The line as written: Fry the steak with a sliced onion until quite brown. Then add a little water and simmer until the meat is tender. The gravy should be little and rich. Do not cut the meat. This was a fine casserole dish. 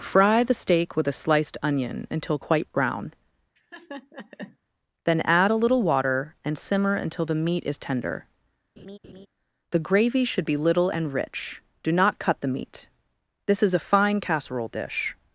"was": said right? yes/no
no